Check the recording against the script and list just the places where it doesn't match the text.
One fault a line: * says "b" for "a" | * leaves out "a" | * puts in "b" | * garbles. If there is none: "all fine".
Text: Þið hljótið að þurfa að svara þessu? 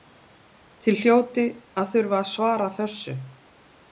all fine